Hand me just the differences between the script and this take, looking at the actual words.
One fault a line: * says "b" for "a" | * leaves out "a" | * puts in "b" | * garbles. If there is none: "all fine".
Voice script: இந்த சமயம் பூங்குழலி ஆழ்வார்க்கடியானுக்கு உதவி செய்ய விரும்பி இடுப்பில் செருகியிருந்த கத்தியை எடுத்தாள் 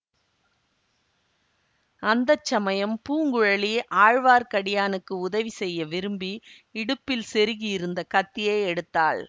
* says "அந்த" for "இந்த"